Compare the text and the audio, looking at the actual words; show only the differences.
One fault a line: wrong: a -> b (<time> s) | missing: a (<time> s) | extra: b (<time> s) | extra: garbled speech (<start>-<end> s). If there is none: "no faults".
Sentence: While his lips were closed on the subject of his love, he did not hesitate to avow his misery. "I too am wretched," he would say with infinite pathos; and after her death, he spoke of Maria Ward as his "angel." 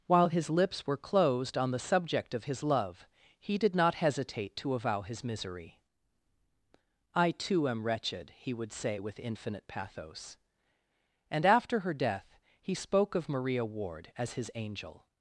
no faults